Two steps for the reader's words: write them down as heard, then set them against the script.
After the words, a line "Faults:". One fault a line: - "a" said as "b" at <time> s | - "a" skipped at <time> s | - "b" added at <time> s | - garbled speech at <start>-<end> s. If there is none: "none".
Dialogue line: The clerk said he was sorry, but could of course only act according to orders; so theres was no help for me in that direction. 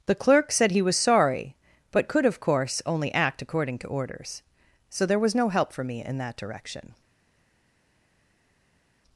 The clerk said he was sorry, but could of course only act according to orders; so there was no help for me in that direction.
Faults:
- "theres" said as "there" at 5.0 s